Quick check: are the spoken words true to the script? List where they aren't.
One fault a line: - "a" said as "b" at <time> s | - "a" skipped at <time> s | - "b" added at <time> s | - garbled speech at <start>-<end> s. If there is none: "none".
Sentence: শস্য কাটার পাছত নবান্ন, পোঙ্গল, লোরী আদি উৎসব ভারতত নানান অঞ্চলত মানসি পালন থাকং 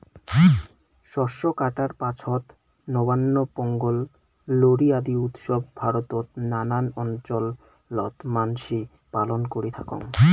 - "করি" added at 9.5 s